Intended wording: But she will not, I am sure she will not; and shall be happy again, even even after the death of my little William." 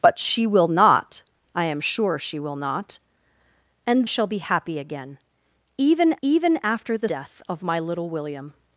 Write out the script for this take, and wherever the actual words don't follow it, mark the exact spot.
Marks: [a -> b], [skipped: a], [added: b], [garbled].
But she will not, I am sure she will not; and shall be happy again, even even after the death of my little William."